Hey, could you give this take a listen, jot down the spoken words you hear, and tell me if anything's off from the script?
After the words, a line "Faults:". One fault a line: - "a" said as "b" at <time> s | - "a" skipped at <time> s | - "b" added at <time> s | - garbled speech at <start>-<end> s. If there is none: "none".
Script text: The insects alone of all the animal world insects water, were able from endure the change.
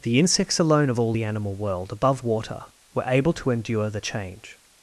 The insects alone of all the animal world above water, were able to endure the change.
Faults:
- "insects" said as "above" at 1.9 s
- "from" said as "to" at 3.3 s